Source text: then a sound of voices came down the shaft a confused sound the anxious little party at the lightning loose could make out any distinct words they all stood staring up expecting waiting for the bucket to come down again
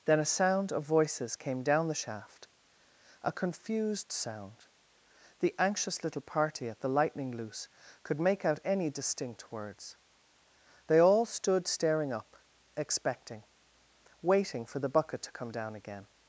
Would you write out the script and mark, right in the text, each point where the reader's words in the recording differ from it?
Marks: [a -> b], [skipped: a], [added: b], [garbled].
then a sound of voices came down the shaft a confused sound the anxious little party at the lightning loose could make out any distinct words they all stood staring up expecting waiting for the bucket to come down again